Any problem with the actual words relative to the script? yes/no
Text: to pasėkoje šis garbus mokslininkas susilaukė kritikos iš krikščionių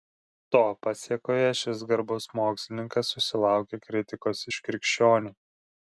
no